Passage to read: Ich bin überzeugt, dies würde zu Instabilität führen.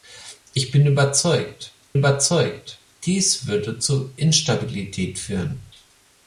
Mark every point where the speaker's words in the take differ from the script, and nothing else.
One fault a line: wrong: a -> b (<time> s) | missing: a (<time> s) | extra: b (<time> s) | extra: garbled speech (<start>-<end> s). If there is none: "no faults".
extra: überzeugt (1.9 s)